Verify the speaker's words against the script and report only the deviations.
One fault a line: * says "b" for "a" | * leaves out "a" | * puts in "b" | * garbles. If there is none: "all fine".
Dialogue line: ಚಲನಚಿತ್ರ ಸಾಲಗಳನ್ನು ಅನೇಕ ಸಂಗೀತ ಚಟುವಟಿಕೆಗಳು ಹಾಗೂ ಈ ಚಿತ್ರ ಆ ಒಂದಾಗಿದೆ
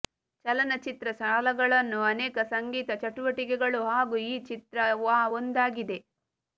all fine